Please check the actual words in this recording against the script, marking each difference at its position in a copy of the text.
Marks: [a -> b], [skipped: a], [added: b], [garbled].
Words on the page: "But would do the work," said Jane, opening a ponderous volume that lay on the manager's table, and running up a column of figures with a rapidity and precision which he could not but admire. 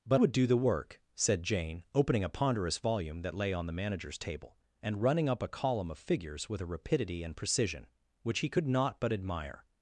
"But would do the work," said Jane, opening a ponderous volume that lay on the manager's table, and running up a column of figures with a rapidity and precision which he could not but admire.